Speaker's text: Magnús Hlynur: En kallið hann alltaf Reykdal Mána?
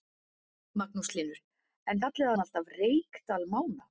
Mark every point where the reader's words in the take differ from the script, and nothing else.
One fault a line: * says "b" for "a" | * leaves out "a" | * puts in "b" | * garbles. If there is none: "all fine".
all fine